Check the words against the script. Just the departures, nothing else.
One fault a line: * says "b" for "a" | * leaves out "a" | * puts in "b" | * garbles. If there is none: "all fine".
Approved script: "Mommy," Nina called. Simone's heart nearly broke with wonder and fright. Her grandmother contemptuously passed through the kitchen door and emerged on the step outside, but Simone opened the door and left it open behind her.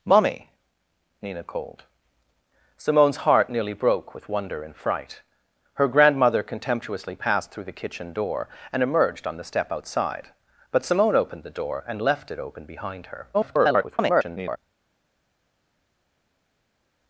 * garbles